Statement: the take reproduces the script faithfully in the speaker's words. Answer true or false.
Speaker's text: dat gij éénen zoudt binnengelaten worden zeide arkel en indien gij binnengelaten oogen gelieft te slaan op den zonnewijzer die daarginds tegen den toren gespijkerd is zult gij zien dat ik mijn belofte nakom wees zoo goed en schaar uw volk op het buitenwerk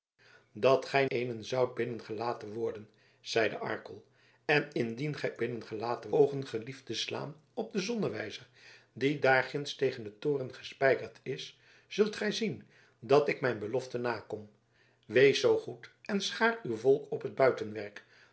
true